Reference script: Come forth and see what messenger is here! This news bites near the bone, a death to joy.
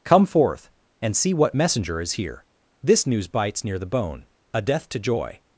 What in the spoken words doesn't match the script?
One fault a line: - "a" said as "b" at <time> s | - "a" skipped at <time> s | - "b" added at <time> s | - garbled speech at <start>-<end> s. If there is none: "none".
none